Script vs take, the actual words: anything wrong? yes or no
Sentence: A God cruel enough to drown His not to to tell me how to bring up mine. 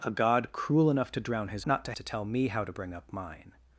no